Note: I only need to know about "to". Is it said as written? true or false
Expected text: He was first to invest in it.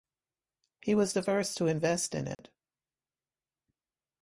true